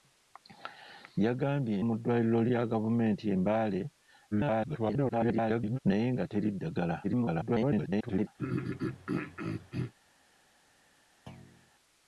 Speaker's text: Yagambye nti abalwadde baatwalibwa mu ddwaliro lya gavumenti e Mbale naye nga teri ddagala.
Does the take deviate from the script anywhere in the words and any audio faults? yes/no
yes